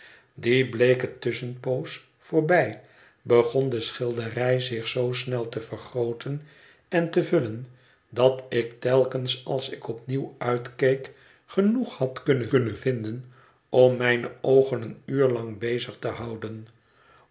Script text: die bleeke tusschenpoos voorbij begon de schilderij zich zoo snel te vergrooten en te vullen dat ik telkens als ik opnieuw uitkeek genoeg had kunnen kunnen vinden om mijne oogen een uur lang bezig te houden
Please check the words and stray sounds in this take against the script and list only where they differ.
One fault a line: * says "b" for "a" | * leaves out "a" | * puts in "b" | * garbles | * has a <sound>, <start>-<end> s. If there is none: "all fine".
all fine